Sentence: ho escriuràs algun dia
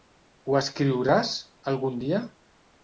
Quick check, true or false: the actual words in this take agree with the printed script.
true